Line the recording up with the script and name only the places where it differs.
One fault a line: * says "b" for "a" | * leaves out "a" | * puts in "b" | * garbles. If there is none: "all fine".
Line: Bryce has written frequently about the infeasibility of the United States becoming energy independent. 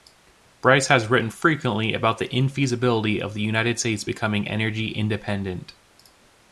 all fine